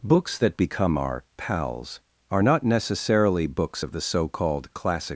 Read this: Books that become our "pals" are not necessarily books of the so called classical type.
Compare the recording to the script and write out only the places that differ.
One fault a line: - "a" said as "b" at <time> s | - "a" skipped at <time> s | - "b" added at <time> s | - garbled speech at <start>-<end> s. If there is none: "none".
- "classical type" said as "classic" at 4.7 s